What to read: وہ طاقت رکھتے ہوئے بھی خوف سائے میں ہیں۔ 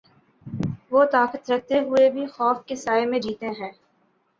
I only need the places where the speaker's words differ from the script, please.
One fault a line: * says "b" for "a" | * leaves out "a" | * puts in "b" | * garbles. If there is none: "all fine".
* puts in "کے"
* puts in "جیتے"